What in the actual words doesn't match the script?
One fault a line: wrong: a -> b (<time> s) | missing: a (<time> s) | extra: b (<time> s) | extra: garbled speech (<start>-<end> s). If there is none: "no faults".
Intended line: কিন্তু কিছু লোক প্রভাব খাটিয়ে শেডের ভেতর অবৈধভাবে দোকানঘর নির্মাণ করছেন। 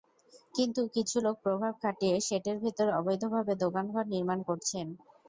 no faults